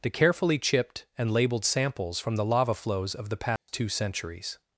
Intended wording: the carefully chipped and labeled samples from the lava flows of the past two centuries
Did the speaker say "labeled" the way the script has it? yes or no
yes